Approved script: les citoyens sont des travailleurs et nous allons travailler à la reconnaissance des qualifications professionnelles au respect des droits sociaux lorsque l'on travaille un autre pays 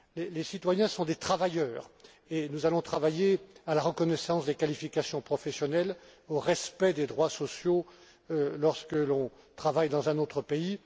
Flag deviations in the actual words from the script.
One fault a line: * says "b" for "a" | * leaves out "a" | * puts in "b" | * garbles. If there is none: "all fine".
* puts in "dans"